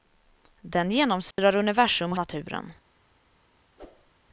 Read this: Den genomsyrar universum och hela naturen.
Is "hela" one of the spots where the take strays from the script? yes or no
yes